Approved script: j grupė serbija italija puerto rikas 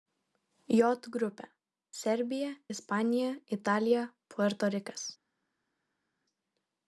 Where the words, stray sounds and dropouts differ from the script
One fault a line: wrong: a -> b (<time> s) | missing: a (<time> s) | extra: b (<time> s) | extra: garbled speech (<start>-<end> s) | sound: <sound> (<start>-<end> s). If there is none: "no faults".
extra: ispanija (2.8 s)